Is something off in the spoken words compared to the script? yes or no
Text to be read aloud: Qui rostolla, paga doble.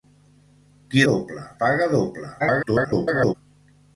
yes